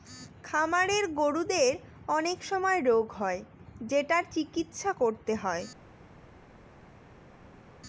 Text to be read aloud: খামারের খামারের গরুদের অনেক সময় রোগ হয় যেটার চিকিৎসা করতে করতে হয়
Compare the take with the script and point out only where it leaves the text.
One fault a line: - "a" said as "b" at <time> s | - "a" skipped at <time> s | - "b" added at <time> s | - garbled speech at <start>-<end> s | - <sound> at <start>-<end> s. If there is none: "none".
- "খামারের" skipped at 1.1 s
- "করতে" skipped at 5.3 s